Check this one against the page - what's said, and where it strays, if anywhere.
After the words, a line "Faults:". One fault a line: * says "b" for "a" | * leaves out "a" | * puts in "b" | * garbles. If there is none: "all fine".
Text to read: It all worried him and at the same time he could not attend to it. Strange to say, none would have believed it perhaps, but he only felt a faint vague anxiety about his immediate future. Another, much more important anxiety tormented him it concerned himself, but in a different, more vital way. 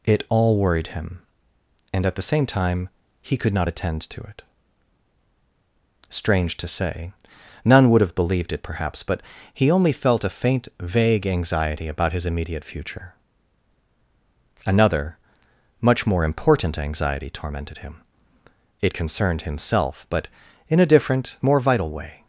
It all worried him and at the same time he could not attend to it. Strange to say, none would have believed it perhaps, but he only felt a faint vague anxiety about his immediate future. Another, much more important anxiety tormented him it concerned himself, but in a different, more vital way.
Faults:
all fine